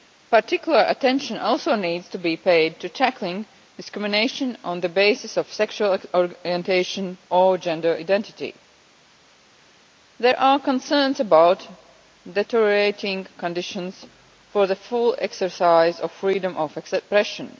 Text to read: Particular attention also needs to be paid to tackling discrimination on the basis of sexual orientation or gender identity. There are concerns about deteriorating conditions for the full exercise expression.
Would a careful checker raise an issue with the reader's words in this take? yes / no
yes